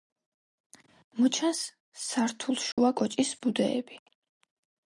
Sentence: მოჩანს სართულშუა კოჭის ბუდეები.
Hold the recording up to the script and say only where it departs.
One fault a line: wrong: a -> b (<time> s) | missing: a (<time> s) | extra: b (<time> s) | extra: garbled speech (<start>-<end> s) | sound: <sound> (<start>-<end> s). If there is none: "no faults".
sound: dropout (2.7-2.8 s)